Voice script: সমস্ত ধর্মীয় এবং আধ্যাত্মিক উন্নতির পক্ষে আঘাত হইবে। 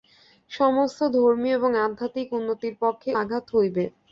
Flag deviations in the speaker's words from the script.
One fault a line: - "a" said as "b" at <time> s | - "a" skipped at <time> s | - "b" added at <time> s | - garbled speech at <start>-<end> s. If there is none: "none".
none